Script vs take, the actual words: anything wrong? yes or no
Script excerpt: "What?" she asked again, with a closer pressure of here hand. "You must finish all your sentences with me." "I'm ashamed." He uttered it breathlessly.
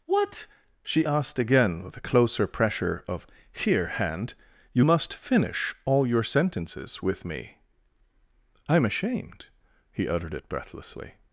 no